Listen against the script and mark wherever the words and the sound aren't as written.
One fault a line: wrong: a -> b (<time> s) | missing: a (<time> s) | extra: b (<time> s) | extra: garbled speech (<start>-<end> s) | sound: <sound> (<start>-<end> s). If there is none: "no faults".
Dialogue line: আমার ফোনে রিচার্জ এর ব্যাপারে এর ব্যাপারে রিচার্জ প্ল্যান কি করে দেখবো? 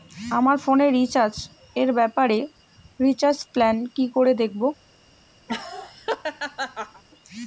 missing: এর ব্যাপারে (2.4 s)
sound: laugh (5.5-7.0 s)